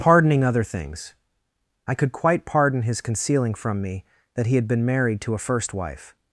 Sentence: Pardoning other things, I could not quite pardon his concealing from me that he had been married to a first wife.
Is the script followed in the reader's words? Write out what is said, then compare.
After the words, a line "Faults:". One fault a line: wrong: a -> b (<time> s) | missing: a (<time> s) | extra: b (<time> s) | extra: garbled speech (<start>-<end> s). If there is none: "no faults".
Pardoning other things, I could quite pardon his concealing from me that he had been married to a first wife.
Faults:
missing: not (2.1 s)